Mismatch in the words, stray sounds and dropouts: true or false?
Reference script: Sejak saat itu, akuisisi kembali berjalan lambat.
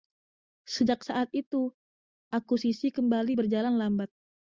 false